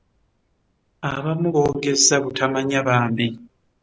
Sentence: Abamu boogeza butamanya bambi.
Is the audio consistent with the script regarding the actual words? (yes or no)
yes